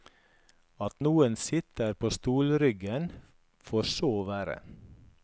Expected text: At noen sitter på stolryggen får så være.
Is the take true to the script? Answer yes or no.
yes